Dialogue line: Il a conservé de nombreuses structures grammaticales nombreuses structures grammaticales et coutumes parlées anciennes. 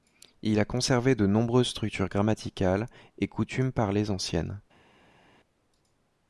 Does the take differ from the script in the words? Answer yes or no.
yes